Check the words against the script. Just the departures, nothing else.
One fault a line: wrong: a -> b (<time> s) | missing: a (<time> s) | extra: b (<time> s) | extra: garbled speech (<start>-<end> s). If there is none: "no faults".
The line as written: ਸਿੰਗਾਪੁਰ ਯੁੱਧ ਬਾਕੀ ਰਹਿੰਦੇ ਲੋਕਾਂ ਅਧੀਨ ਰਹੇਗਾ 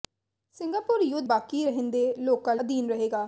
no faults